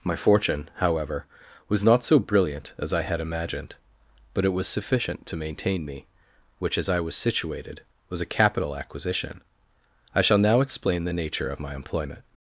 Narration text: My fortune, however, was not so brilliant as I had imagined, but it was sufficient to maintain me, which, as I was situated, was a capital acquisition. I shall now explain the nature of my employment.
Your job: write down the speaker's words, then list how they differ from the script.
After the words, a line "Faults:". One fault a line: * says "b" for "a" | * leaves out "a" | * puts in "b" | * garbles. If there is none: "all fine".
My fortune, however, was not so brilliant as I had imagined, but it was sufficient to maintain me, which, as I was situated, was a capital acquisition. I shall now explain the nature of my employment.
Faults:
all fine